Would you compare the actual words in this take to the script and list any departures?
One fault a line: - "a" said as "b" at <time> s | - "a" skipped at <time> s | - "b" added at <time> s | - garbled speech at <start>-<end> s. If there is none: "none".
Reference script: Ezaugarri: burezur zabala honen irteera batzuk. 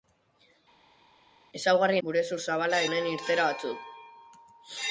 none